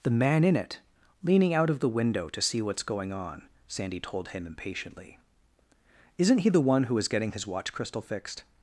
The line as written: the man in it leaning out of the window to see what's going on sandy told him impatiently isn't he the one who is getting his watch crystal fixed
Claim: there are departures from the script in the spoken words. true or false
false